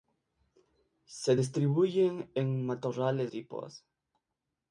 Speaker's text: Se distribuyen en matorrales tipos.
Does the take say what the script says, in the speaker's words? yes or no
yes